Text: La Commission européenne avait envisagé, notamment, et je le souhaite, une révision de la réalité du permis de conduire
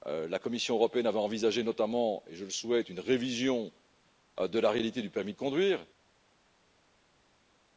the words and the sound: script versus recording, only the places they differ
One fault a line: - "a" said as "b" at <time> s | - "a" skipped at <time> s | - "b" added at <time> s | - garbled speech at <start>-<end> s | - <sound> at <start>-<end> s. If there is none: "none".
none